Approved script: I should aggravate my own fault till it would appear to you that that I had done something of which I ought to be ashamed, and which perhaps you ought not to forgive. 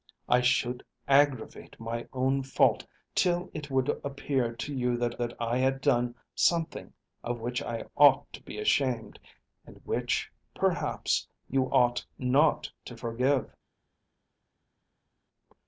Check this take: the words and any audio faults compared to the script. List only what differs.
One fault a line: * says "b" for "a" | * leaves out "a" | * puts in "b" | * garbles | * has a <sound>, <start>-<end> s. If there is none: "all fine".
all fine